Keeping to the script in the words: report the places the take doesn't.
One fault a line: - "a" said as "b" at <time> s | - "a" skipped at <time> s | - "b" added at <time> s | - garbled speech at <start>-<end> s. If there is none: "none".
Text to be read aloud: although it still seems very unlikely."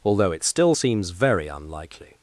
none